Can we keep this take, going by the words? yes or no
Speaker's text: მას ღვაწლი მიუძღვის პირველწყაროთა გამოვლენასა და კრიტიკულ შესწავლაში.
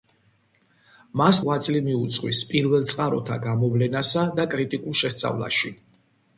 yes